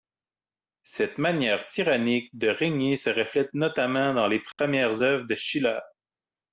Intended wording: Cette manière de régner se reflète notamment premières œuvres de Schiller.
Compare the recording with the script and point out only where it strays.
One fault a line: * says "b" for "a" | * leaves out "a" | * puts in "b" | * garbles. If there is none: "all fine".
* puts in "tyrannique"
* puts in "dans les"